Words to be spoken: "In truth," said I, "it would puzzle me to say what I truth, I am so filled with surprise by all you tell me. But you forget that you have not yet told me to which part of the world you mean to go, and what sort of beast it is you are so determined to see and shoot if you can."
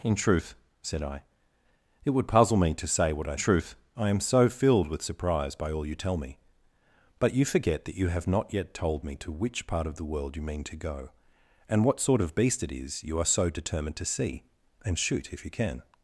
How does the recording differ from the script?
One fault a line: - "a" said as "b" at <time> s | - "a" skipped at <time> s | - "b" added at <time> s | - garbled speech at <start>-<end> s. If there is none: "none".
none